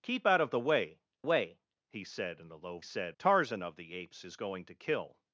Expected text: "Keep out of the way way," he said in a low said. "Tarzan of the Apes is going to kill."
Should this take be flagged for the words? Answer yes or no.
no